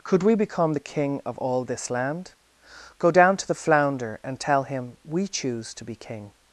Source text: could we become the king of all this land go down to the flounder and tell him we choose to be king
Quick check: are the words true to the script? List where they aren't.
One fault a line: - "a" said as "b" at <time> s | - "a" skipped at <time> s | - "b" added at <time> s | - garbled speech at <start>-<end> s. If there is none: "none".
none